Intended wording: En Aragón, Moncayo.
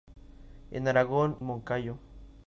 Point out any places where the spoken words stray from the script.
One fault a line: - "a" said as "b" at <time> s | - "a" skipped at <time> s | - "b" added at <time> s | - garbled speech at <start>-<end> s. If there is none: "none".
none